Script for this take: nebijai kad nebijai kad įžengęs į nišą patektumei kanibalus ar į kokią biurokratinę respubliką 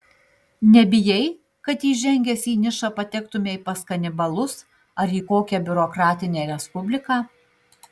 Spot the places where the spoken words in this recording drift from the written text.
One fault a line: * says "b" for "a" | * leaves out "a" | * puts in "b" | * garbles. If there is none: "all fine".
* leaves out "nebijai kad"
* puts in "pas"